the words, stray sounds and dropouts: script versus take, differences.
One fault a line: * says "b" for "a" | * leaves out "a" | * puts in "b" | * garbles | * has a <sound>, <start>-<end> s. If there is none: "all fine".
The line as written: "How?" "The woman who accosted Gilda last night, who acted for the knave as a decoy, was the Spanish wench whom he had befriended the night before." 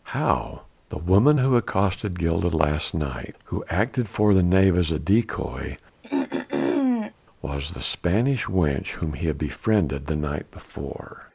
* has a throat clearing, 6.0-7.1 s